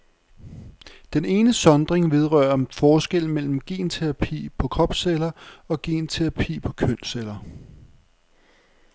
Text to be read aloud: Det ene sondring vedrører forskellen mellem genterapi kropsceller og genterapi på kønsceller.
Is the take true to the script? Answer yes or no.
no